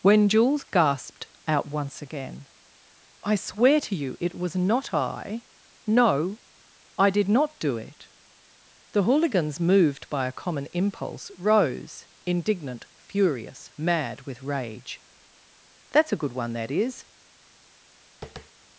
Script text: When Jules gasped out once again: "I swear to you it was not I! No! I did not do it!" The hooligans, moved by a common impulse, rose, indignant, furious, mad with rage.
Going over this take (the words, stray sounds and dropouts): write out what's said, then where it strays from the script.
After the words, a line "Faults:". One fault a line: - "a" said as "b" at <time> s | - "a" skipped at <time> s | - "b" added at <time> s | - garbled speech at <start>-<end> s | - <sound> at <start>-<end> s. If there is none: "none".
When Jules gasped out once again: "I swear to you it was not I! No! I did not do it!" The hooligans, moved by a common impulse, rose, indignant, furious, mad with rage. "That's a good one, that is
Faults:
- "That's a good one that is" added at 15.9 s
- tap at 18.2-18.5 s